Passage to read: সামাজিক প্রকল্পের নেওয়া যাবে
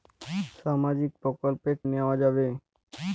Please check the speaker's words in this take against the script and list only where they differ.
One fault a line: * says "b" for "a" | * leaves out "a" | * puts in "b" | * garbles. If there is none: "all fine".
all fine